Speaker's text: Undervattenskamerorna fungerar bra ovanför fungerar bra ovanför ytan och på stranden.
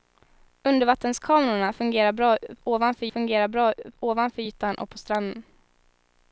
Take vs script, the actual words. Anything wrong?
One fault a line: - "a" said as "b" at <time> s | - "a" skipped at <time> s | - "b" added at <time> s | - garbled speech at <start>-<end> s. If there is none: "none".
none